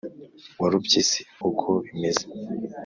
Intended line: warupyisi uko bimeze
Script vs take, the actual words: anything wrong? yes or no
no